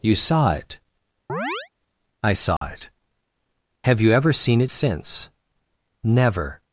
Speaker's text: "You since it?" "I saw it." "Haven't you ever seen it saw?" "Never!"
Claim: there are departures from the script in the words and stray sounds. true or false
true